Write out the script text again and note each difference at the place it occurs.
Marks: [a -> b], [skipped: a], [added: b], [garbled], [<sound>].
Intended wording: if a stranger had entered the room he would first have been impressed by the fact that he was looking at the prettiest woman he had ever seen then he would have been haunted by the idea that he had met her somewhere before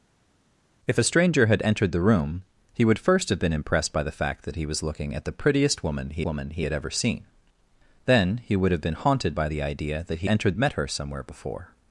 if a stranger had entered the room he would first have been impressed by the fact that he was looking at the prettiest woman he [added: woman he] had ever seen then he would have been haunted by the idea that he [had -> entered] met her somewhere before